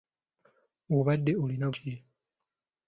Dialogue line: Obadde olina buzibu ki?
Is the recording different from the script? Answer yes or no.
yes